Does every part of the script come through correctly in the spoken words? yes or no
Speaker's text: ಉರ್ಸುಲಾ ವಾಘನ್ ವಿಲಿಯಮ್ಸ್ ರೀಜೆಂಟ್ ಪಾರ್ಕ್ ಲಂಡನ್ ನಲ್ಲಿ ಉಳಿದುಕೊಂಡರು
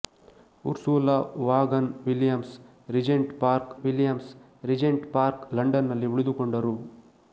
no